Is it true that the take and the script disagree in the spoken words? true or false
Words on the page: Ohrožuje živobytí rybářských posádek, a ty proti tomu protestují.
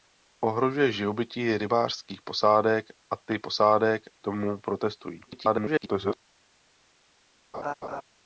true